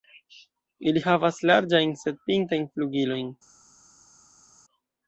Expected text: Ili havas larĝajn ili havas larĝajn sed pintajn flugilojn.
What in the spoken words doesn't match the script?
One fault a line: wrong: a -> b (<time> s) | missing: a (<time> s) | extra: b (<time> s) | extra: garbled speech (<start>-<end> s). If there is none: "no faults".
missing: ili havas larĝajn (1.9 s)